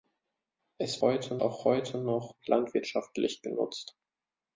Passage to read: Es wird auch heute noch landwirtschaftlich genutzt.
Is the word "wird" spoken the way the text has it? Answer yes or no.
no